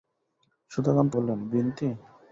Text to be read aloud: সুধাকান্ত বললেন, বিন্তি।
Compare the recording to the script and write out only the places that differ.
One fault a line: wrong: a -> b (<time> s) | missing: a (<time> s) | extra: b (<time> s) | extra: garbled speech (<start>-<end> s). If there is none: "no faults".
no faults